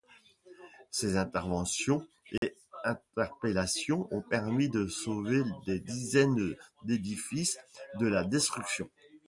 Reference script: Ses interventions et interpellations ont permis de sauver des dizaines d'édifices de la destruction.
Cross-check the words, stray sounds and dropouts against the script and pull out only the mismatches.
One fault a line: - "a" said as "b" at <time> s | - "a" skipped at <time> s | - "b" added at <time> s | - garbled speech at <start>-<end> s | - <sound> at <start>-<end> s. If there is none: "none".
- dropout at 2.4-2.4 s